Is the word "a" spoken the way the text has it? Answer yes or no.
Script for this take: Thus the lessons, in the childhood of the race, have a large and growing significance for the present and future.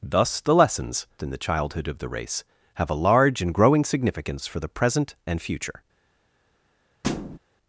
yes